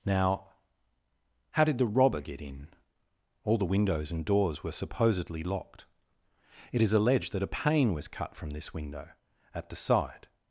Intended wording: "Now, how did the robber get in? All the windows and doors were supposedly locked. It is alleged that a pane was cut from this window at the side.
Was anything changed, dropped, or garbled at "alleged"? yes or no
no